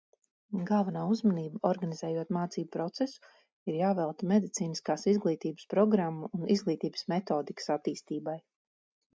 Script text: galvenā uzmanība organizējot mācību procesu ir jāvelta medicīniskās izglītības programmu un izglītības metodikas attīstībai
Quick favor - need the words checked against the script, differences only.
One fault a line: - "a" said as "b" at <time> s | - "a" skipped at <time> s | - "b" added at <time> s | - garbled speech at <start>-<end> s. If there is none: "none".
none